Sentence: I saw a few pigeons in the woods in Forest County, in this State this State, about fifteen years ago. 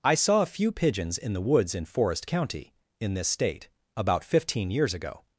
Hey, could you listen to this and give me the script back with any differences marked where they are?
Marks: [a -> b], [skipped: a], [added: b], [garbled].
I saw a few pigeons in the woods in Forest County, in this State [skipped: this State,] about fifteen years ago.